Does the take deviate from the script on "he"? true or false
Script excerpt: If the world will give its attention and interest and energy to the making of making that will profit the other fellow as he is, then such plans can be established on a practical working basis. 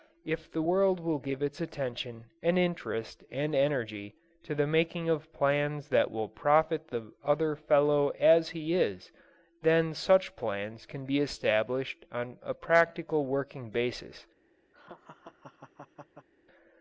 false